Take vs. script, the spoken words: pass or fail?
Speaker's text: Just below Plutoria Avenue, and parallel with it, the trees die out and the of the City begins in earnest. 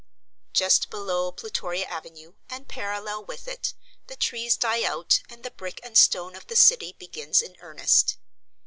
fail